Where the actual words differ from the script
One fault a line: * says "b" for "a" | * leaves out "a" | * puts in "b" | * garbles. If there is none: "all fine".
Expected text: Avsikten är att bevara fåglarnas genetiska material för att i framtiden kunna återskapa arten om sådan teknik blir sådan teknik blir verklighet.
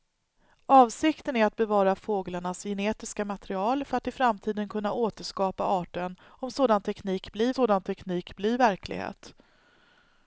all fine